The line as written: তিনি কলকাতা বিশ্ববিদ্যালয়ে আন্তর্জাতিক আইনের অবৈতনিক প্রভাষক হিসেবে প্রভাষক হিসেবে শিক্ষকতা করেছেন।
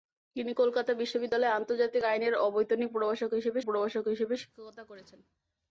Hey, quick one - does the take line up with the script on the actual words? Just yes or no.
yes